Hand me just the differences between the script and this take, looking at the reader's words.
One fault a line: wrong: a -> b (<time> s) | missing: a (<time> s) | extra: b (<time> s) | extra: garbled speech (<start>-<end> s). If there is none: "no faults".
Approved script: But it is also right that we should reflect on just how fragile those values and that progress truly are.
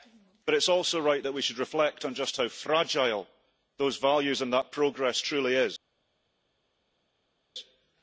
no faults